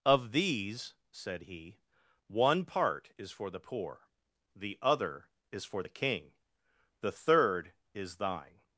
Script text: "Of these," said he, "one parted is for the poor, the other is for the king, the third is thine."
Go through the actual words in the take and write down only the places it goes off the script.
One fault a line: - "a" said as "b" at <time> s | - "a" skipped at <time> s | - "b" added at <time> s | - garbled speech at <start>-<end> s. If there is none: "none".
- "parted" said as "part" at 2.6 s